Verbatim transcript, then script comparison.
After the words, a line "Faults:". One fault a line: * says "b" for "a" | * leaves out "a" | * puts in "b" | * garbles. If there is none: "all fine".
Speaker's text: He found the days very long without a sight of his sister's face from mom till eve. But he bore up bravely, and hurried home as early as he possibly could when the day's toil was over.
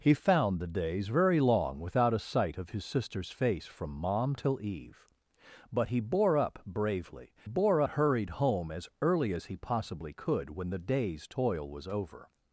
He found the days very long without a sight of his sister's face from mom till eve. But he bore up bravely, bore hurried home as early as he possibly could when the day's toil was over.
Faults:
* says "bore" for "and"